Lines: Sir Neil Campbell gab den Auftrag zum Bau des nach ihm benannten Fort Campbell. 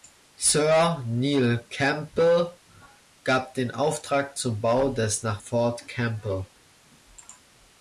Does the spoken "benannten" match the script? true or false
false